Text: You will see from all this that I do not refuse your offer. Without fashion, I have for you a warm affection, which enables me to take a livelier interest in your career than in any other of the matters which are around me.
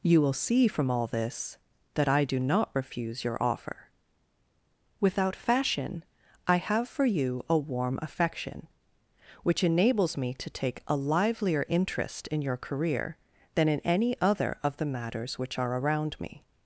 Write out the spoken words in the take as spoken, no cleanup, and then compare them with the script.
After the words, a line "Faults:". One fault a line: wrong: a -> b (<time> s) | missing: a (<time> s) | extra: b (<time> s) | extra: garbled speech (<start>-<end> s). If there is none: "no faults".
You will see from all this that I do not refuse your offer. Without fashion, I have for you a warm affection, which enables me to take a livelier interest in your career than in any other of the matters which are around me.
Faults:
no faults